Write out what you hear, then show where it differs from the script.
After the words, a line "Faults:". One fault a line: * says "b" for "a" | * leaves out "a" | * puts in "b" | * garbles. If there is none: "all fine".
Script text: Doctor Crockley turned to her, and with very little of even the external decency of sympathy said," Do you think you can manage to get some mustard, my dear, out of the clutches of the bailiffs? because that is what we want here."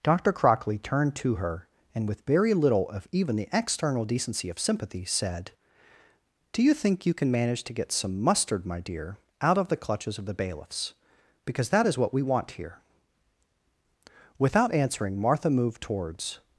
Doctor Crockley turned to her, and with very little of even the external decency of sympathy said," Do you think you can manage to get some mustard, my dear, out of the clutches of the bailiffs? because that is what we want here." Without answering, Martha moved towards
Faults:
* puts in "Without answering Martha moved towards"